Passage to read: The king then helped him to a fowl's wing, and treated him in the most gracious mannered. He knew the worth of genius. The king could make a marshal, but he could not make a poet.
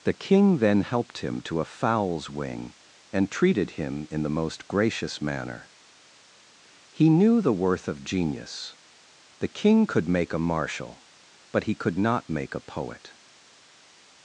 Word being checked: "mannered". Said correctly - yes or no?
no